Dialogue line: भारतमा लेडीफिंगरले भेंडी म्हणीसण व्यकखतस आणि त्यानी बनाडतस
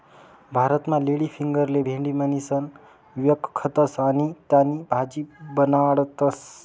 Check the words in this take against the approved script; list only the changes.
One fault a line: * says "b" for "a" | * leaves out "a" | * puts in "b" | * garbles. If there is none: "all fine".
* puts in "भाजी"